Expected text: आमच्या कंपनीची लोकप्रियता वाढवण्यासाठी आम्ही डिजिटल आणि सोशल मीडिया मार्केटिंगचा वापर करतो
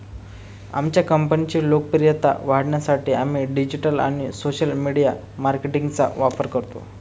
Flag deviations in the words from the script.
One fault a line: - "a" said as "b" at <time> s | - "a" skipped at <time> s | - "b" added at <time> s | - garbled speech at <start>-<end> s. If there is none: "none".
none